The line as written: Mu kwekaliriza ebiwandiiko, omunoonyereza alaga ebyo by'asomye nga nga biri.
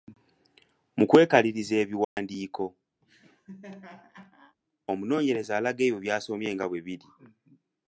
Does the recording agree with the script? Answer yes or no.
no